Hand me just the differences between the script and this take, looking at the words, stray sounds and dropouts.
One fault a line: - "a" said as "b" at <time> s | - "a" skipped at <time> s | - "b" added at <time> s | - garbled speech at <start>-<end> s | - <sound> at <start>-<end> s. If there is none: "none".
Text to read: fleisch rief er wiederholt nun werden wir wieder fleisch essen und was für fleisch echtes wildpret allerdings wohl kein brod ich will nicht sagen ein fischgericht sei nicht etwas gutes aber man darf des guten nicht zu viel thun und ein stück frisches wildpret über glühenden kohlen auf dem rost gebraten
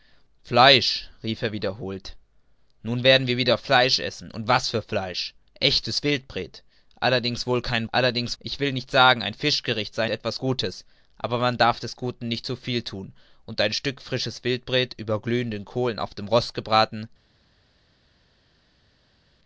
- "brod" said as "allerdings" at 7.9 s
- "nicht" skipped at 10.1 s